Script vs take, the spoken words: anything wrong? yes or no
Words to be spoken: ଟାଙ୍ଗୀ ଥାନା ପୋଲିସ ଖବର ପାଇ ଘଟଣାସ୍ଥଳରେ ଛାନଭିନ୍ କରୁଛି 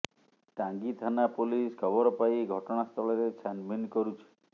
no